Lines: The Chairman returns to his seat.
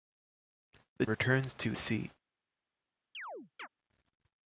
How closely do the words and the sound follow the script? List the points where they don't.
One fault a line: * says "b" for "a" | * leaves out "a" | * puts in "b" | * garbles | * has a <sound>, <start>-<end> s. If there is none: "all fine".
* leaves out "Chairman"
* leaves out "his"
* has a chirp, 3.1-3.7 s